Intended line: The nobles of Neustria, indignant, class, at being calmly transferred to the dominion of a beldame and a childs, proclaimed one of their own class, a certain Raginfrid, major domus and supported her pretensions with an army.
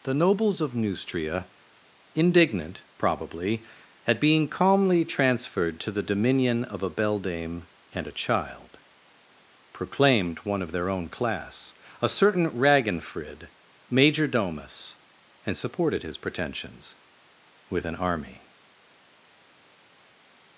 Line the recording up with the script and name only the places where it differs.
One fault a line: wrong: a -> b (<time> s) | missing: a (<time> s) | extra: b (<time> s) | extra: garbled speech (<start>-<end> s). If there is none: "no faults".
wrong: class -> probably (3.0 s)
wrong: childs -> child (8.1 s)
wrong: her -> his (16.0 s)